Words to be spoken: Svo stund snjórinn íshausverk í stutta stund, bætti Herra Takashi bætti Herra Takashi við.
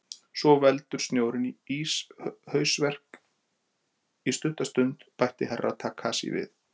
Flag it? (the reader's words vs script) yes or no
yes